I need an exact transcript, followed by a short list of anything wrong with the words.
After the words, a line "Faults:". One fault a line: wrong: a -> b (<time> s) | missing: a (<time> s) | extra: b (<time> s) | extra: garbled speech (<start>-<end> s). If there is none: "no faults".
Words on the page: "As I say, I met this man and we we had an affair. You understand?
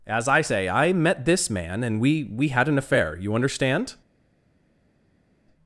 "As I say, I met this man and we we had an affair. You understand?
Faults:
no faults